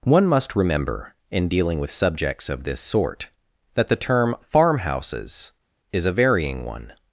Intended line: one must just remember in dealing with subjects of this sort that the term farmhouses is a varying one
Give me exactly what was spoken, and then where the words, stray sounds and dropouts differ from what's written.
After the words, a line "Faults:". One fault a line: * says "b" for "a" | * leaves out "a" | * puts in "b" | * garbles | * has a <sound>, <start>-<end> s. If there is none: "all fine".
one must remember in dealing with subjects of this sort that the term farmhouses is a varying one
Faults:
* leaves out "just"